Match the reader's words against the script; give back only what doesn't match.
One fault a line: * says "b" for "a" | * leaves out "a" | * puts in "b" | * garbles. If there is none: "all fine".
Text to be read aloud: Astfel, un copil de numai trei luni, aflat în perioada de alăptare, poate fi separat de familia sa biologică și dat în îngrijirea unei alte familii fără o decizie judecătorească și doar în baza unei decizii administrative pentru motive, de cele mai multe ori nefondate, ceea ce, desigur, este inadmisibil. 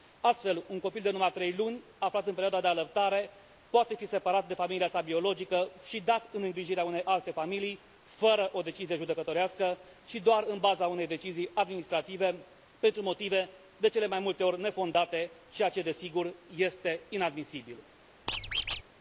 all fine